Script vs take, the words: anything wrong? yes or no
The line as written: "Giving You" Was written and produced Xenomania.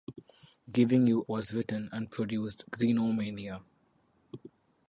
no